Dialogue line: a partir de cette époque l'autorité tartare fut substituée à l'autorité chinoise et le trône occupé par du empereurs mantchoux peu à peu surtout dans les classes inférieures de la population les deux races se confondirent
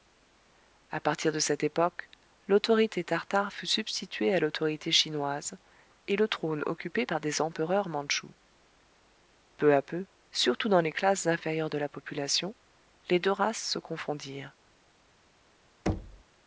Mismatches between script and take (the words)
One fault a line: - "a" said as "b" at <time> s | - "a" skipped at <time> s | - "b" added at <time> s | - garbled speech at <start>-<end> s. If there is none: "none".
- "du" said as "des" at 7.2 s